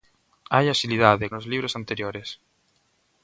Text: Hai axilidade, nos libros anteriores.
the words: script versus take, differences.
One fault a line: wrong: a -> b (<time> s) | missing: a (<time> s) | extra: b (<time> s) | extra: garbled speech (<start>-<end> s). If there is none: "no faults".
no faults